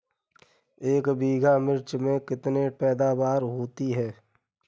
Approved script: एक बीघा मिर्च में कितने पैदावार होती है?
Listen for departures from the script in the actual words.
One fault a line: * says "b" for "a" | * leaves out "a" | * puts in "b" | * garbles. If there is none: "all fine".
all fine